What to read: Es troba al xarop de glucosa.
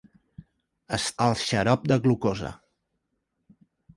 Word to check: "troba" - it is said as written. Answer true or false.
false